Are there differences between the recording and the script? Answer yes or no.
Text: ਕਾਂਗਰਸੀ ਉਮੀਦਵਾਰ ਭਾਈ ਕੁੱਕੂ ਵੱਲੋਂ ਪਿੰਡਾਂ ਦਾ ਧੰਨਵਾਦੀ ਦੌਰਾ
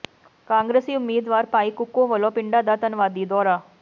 no